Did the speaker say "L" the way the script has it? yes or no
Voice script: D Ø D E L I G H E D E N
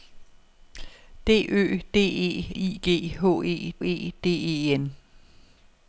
no